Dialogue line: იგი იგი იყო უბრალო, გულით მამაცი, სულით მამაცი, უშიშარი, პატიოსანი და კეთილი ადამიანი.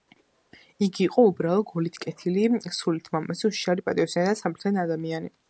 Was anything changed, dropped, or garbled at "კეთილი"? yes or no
yes